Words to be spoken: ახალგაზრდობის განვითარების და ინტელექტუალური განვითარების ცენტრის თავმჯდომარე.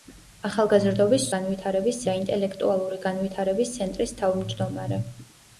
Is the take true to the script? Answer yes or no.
yes